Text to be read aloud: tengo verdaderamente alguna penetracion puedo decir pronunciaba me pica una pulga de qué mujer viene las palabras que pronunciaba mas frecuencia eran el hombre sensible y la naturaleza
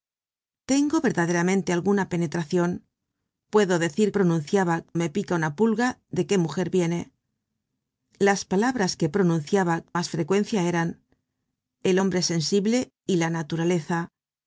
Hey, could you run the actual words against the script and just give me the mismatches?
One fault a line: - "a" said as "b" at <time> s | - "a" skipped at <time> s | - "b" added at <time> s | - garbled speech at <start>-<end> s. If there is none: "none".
none